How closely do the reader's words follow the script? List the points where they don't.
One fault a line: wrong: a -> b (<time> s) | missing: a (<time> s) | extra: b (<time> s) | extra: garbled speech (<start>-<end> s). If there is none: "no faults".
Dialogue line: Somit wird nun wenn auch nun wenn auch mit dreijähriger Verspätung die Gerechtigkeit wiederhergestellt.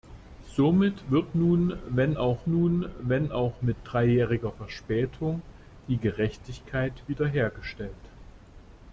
no faults